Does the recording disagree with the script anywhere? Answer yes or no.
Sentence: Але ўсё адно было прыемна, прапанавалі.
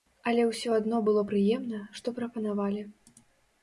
yes